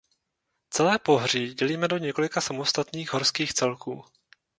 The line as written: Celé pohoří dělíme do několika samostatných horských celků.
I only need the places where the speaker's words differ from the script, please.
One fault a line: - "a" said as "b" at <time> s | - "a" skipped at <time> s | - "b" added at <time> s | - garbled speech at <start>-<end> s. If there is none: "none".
none